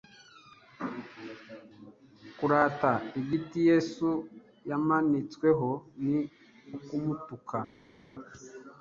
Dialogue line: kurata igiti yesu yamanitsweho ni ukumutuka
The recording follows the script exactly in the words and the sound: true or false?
true